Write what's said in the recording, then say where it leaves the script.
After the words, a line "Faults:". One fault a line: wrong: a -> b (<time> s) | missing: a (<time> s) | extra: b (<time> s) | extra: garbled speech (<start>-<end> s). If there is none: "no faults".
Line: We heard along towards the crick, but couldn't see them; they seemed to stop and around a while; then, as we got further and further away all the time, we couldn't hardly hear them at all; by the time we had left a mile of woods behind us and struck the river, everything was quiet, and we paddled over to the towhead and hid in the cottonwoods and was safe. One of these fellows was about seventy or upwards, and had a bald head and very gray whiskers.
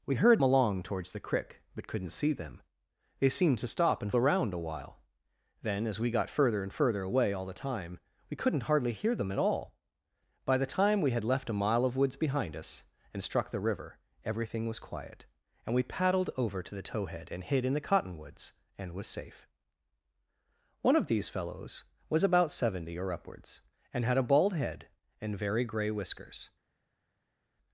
We heard along towards the crick, but couldn't see them; they seemed to stop and around a while; then, as we got further and further away all the time, we couldn't hardly hear them at all; by the time we had left a mile of woods behind us and struck the river, everything was quiet, and we paddled over to the towhead and hid in the cottonwoods and was safe. One of these fellows was about seventy or upwards, and had a bald head and very gray whiskers.
Faults:
no faults